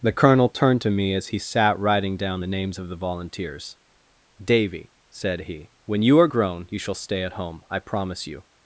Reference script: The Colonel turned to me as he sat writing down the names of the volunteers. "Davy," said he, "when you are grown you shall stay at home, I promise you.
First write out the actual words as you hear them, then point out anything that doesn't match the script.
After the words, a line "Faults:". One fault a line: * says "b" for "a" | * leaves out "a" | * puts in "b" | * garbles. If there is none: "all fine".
The Colonel turned to me as he sat writing down the names of the volunteers. "Davy," said he, "when you are grown you shall stay at home, I promise you.
Faults:
all fine